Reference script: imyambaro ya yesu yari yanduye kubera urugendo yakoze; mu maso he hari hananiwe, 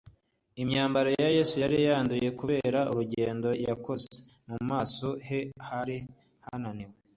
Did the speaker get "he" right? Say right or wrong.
right